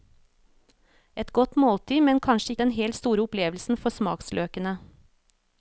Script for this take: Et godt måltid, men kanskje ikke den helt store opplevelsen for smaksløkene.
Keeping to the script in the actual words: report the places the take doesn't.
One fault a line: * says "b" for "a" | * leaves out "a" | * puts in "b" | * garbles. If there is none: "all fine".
* leaves out "ikke"